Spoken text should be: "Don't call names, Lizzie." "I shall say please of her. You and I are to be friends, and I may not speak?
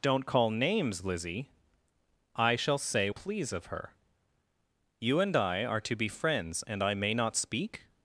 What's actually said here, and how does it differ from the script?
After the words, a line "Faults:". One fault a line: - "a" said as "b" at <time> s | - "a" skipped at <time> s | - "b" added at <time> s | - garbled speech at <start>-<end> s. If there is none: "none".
"Don't call names, Lizzie." "I shall say please of her. You and I are to be friends, and I may not speak?
Faults:
none